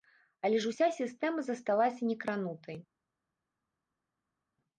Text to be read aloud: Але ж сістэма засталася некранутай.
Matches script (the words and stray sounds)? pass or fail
fail